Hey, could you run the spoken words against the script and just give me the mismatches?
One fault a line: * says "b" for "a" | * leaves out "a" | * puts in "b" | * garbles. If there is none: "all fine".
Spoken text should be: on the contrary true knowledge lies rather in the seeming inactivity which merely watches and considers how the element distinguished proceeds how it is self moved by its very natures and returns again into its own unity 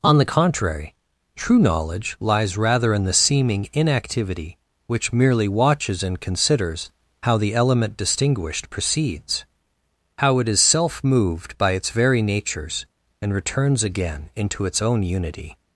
all fine